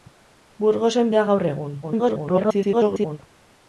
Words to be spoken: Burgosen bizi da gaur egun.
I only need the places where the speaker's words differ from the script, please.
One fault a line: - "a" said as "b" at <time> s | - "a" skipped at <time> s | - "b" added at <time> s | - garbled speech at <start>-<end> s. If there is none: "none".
- "bizi" skipped at 1.1 s
- garbled speech at 1.8-3.2 s